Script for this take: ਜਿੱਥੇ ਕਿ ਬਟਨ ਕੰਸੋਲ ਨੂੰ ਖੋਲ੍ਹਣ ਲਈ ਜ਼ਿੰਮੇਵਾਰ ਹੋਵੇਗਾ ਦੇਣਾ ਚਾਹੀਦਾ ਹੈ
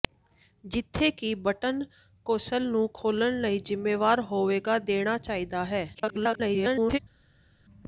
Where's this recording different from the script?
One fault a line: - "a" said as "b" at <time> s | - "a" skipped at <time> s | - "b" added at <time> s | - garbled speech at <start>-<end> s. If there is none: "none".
- garbled speech at 5.9-7.0 s